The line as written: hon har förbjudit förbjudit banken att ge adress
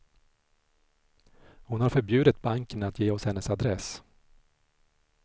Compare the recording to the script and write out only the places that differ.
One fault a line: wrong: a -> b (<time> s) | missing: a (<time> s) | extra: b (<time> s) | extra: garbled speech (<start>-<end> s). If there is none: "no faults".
missing: förbjudit (2.4 s)
extra: oss hennes (3.1 s)